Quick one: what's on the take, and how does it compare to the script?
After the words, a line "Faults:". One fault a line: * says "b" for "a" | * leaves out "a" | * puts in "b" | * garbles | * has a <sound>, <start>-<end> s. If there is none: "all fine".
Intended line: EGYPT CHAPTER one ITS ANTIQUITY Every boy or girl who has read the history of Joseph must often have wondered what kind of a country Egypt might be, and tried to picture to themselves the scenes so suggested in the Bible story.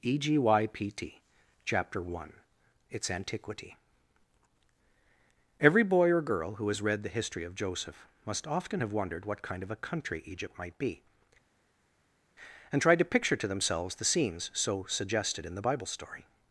EGYPT CHAPTER one ITS ANTIQUITY Every boy or girl who has read the history of Joseph must often have wondered what kind of a country Egypt might be, and tried to picture to themselves the scenes so suggested in the Bible story.
Faults:
all fine